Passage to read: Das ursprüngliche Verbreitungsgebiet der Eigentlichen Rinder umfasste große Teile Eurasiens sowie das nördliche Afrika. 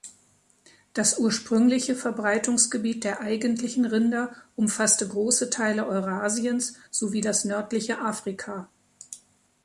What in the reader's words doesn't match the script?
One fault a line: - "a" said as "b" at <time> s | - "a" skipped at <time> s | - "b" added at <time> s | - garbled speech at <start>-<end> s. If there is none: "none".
none